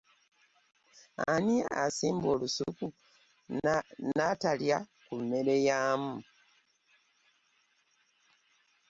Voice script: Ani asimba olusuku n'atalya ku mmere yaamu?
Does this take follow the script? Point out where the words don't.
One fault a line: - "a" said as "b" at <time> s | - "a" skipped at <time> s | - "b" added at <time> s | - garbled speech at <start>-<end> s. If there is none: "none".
none